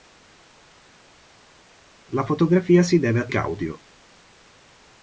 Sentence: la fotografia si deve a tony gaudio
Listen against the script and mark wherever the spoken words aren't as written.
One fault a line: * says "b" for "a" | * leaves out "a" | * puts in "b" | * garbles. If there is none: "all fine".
* leaves out "tony"